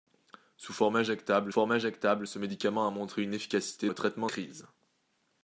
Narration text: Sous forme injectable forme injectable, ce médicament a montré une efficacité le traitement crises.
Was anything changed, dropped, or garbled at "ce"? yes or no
no